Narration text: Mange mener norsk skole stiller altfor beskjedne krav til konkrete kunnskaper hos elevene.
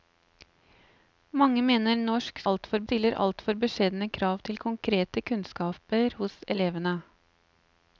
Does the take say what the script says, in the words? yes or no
no